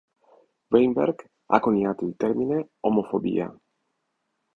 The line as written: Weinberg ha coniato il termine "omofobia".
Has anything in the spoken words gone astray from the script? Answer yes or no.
no